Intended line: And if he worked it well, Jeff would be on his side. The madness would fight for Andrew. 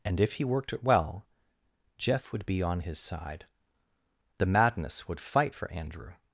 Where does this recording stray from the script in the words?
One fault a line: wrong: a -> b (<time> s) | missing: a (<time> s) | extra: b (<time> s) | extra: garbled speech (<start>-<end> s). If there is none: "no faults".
no faults